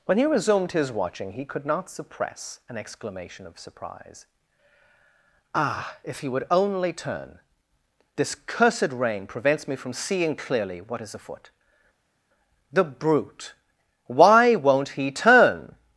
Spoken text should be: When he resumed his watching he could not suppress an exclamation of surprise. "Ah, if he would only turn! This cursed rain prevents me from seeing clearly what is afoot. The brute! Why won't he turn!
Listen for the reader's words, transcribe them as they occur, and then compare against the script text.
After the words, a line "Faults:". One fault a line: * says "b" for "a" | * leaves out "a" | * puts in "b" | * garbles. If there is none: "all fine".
When he resumed his watching he could not suppress an exclamation of surprise. "Ah, if he would only turn! This cursed rain prevents me from seeing clearly what is afoot. The brute! Why won't he turn!
Faults:
all fine